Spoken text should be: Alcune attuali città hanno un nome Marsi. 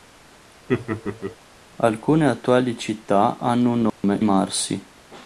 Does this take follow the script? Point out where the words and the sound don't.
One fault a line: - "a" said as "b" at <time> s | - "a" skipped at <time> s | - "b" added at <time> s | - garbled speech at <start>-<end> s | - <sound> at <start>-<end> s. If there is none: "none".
- laugh at 0.7-1.4 s
- dropout at 3.9-4.0 s